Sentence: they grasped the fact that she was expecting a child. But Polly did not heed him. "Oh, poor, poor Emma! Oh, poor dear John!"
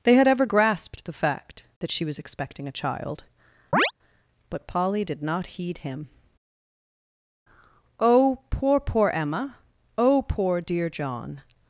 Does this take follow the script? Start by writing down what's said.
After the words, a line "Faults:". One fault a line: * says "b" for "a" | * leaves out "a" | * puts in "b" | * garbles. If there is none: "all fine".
they had ever grasped the fact that she was expecting a child. But Polly did not heed him. "Oh, poor, poor Emma! Oh, poor dear John!"
Faults:
* puts in "had ever"